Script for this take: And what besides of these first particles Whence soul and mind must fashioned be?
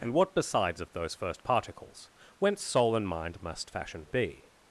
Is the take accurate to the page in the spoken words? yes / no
no